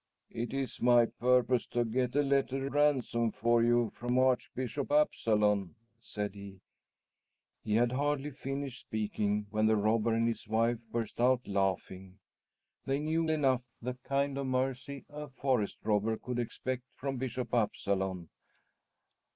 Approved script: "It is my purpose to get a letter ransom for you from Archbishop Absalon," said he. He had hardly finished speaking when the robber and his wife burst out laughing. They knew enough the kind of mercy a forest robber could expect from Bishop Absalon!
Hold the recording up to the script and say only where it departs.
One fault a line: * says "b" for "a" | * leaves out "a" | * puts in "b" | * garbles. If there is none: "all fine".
all fine